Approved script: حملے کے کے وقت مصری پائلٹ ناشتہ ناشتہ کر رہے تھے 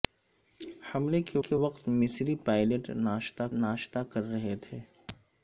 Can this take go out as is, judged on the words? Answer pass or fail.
pass